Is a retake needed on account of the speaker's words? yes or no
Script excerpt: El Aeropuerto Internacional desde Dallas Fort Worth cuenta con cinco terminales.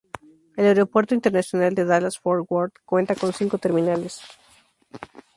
yes